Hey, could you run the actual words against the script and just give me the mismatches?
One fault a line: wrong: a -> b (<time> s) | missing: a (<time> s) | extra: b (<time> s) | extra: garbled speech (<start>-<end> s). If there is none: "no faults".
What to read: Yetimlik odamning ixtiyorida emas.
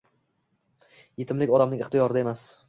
no faults